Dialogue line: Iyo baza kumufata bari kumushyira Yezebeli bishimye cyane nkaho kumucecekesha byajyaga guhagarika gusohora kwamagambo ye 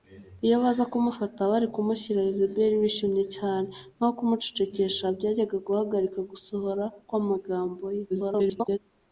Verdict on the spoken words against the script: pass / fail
fail